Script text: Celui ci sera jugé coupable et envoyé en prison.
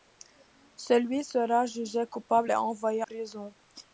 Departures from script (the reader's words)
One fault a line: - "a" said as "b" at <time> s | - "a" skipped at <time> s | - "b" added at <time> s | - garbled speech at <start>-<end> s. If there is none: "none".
- "ci" skipped at 1.2 s
- "en" skipped at 3.0 s